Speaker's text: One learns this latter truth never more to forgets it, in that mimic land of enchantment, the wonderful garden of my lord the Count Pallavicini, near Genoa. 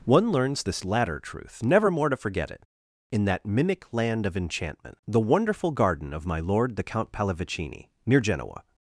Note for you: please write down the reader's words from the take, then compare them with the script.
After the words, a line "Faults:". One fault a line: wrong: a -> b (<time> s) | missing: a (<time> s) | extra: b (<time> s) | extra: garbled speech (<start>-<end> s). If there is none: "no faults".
One learns this latter truth never more to forget it, in that mimic land of enchantment, the wonderful garden of my lord the Count Pallavicini, near Genoa.
Faults:
wrong: forgets -> forget (2.1 s)